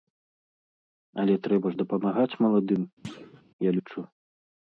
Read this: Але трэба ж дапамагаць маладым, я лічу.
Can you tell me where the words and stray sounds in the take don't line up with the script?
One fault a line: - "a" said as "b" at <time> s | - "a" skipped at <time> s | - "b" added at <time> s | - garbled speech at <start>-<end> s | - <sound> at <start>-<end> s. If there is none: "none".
- thud at 3.0-3.4 s